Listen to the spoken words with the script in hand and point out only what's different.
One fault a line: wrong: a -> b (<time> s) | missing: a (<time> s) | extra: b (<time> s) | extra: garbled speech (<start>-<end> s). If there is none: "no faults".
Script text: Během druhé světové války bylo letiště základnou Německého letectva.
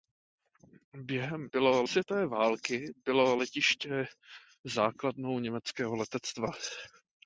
wrong: druhé -> bylo (1.5 s)